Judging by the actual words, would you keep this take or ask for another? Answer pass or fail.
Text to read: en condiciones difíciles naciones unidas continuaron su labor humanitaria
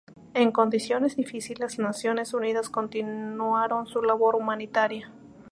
pass